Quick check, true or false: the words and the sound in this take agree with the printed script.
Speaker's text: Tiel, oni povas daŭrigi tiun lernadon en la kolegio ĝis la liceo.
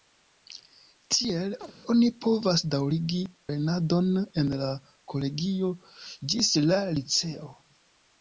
false